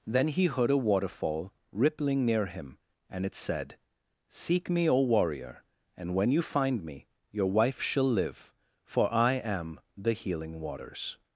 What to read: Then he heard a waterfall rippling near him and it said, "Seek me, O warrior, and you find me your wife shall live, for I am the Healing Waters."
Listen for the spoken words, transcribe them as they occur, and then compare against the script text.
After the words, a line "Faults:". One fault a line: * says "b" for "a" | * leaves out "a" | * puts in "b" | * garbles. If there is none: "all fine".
Then he heard a waterfall rippling near him and it said, "Seek me, O warrior, and when you find me your wife shall live, for I am the Healing Waters."
Faults:
* puts in "when"